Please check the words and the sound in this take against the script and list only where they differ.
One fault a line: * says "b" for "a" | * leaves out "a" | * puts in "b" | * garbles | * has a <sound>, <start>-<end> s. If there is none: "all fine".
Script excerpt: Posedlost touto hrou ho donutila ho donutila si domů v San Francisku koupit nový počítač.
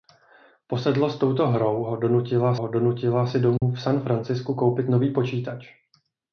* has a dropout, 3.6-3.6 s